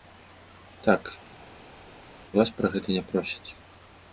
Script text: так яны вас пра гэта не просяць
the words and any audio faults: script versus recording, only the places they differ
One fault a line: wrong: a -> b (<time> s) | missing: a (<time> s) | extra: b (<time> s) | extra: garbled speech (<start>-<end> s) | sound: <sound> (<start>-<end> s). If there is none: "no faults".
missing: яны (1.1 s)